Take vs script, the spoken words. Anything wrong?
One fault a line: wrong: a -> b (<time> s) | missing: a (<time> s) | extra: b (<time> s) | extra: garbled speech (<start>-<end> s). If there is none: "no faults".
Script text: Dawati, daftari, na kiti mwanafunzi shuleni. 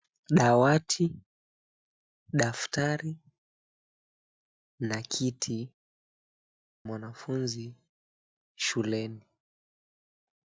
no faults